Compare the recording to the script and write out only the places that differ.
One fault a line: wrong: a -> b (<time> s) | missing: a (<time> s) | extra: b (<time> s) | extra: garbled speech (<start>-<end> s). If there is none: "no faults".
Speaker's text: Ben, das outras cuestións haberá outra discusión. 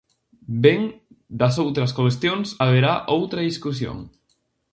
no faults